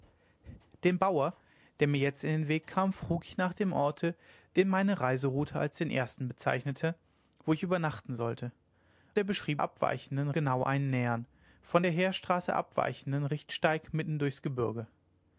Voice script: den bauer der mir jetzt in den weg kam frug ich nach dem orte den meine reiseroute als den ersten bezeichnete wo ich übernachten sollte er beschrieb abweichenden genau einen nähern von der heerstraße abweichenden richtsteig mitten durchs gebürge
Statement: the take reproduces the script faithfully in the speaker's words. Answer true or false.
true